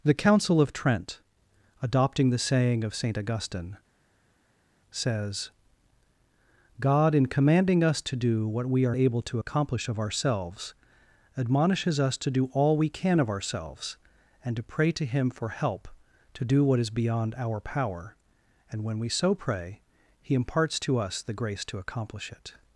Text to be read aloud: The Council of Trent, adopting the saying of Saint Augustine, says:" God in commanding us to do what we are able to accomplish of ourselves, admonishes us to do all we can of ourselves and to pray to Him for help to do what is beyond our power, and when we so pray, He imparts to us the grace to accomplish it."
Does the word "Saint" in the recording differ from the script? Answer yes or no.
no